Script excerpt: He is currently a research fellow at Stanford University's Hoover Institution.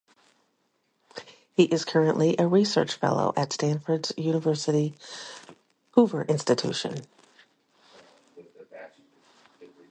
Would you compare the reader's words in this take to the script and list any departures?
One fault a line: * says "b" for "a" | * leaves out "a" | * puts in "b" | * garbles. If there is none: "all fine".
all fine